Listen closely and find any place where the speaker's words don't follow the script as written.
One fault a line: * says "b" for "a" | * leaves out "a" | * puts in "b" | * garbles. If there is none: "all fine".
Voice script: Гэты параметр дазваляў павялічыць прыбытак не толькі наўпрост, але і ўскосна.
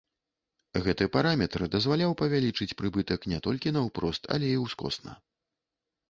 all fine